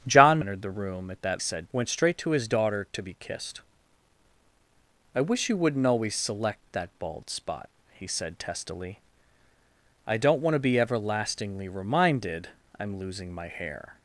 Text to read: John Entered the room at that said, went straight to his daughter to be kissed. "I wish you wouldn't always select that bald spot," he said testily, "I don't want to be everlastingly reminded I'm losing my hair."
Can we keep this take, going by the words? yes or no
yes